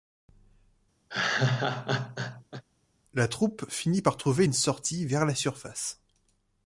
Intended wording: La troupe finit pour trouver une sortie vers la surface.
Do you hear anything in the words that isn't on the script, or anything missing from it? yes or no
yes